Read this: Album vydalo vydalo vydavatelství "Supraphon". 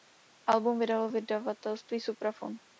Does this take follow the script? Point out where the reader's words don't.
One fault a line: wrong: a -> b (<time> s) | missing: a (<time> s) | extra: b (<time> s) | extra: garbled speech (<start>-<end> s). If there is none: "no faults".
missing: vydalo (1.1 s)